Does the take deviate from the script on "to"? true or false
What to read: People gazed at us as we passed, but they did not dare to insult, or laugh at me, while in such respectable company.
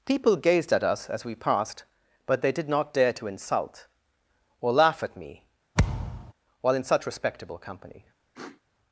false